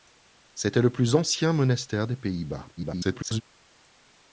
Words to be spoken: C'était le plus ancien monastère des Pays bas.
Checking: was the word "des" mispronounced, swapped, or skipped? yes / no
no